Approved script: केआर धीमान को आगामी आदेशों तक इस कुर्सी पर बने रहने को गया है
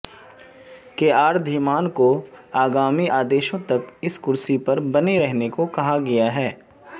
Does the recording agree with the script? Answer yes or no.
no